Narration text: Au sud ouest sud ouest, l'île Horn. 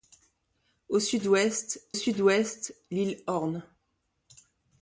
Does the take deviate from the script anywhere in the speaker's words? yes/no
no